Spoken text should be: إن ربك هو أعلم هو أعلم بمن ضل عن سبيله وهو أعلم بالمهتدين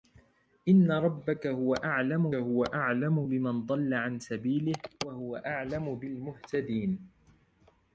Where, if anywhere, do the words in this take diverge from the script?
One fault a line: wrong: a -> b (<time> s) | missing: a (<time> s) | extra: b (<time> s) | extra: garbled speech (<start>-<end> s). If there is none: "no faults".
no faults